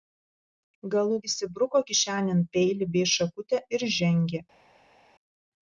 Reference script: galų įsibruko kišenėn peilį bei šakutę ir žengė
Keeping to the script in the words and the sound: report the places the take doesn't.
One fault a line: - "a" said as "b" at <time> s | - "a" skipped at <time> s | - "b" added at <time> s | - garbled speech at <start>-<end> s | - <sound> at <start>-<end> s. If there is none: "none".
none